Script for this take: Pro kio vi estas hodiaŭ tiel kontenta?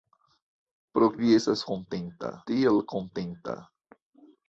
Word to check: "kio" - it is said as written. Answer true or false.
false